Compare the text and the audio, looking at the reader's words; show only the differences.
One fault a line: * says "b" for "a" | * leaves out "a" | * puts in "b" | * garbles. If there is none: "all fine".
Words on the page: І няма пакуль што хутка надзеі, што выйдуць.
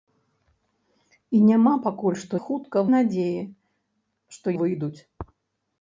all fine